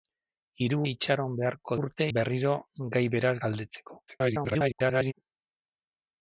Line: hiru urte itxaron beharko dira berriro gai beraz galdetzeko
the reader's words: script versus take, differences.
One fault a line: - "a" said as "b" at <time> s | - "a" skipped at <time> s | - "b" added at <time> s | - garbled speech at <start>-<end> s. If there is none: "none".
- "urte" skipped at 0.8 s
- "dira" said as "urte" at 1.8 s
- garbled speech at 4.1-5.1 s